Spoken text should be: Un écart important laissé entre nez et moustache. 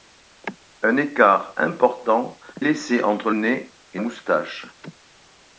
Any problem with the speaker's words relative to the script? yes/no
no